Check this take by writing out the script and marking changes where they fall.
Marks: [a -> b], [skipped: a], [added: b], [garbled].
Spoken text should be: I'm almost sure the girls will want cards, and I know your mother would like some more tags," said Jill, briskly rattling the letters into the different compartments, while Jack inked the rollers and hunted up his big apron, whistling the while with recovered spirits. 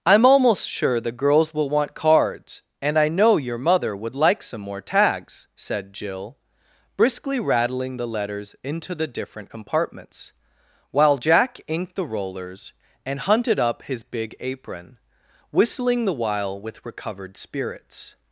I'm almost sure the girls will want cards, and I know your mother would like some more tags," said Jill, briskly rattling the letters into the different compartments, while Jack inked the rollers and hunted up his big apron, whistling the while with recovered spirits.